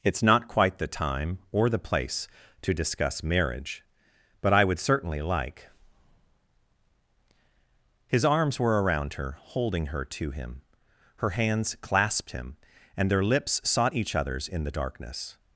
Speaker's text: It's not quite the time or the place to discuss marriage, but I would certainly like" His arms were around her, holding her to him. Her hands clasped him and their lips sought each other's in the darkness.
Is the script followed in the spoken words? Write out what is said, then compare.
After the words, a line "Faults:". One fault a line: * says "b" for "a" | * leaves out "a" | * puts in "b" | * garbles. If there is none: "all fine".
It's not quite the time or the place to discuss marriage, but I would certainly like" His arms were around her, holding her to him. Her hands clasped him and their lips sought each other's in the darkness.
Faults:
all fine